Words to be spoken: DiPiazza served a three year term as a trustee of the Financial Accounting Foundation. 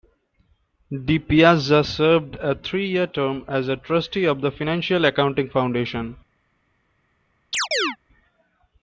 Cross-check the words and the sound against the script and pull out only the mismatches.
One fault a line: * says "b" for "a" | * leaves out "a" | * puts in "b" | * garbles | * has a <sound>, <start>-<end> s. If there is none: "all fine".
* has a chirp, 7.5-8.0 s